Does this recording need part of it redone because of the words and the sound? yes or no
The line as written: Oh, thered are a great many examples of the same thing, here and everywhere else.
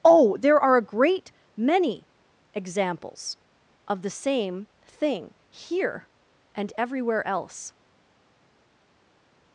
yes